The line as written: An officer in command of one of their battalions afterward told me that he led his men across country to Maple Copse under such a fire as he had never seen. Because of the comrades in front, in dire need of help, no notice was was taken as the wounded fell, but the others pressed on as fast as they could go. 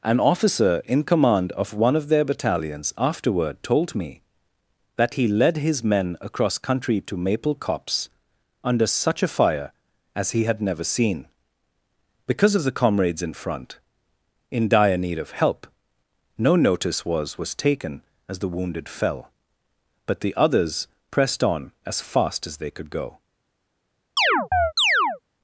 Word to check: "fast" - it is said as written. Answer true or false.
true